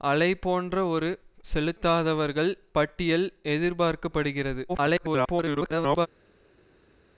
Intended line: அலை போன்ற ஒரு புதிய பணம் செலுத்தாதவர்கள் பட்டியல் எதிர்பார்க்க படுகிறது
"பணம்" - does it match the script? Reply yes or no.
no